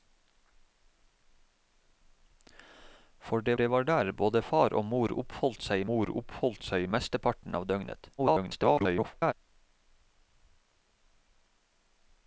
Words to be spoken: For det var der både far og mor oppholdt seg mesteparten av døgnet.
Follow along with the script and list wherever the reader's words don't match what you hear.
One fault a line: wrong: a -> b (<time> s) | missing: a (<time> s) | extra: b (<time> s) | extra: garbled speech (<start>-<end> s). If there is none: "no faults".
extra: det (3.5 s)
extra: mor oppholdt seg (5.9 s)
extra: garbled speech (8.2-9.3 s)